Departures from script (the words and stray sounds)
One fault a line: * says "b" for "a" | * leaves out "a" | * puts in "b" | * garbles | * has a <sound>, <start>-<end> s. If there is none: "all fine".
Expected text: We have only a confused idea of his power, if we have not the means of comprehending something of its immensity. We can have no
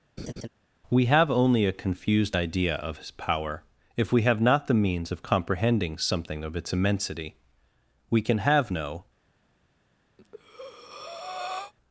* has a laugh, 0.2-0.5 s
* has a breath, 10.2-11.7 s